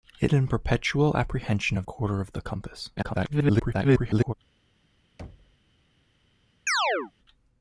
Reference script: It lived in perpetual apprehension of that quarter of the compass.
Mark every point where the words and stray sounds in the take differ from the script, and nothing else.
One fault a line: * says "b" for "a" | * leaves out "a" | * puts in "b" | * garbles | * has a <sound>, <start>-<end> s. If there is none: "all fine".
* leaves out "lived"
* leaves out "that"
* garbles
* has a thud, 5.2-5.6 s
* has a chirp, 6.7-7.1 s